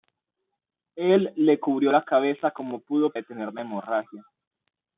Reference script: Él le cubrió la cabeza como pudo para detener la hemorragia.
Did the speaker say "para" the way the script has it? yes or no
no